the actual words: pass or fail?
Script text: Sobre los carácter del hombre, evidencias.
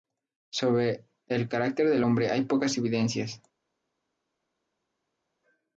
fail